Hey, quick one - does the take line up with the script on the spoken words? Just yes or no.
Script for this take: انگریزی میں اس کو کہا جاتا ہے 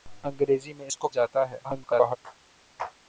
no